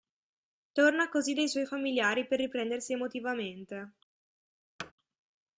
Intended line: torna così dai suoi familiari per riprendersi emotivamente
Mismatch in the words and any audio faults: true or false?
true